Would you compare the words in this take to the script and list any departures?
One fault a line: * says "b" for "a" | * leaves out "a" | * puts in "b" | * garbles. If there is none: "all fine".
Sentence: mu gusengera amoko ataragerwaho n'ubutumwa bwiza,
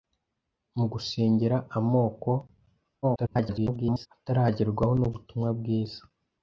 * garbles